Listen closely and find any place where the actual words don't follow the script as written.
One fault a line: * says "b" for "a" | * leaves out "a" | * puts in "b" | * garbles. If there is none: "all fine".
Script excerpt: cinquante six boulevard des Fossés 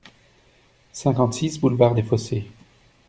all fine